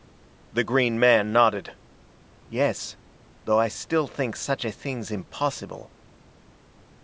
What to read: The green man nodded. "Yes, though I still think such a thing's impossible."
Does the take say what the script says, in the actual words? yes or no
yes